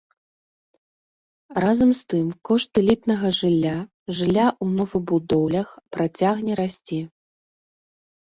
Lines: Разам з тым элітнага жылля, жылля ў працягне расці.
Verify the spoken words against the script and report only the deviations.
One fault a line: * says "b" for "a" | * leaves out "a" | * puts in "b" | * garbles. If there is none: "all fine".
* puts in "кошт"
* puts in "новабудоўлях"